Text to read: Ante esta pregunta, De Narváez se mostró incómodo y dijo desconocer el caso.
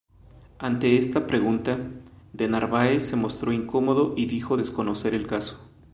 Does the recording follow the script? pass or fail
pass